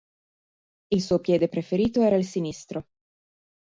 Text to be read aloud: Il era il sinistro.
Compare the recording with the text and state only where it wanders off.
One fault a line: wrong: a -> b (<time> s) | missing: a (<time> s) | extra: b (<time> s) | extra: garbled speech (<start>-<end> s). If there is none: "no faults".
extra: suo piede preferito (1.0 s)